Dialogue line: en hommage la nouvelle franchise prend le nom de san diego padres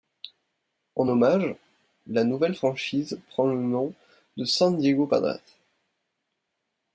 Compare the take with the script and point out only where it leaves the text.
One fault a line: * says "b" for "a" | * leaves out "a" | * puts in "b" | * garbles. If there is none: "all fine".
all fine